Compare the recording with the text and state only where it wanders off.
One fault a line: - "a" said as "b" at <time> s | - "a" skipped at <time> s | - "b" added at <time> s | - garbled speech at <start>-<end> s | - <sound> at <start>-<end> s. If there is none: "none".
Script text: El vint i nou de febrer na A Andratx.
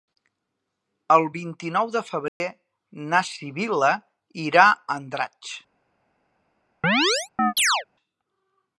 - dropout at 2.3-2.4 s
- "Sibil·la irà" added at 3.3 s
- chirp at 6.8-7.8 s